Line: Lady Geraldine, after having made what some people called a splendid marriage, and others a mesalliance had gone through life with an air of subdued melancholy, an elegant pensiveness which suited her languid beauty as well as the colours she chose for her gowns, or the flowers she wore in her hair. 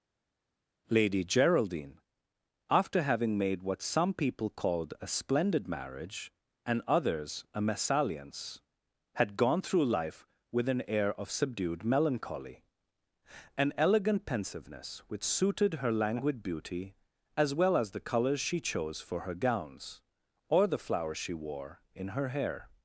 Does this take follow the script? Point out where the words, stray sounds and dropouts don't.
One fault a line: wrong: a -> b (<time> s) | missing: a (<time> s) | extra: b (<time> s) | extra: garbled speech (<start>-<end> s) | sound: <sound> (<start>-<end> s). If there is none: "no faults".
no faults